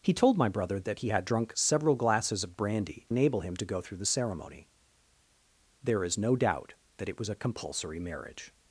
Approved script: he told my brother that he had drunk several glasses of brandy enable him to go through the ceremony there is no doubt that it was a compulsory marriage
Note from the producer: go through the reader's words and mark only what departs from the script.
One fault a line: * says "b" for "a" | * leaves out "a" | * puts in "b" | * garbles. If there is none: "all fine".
all fine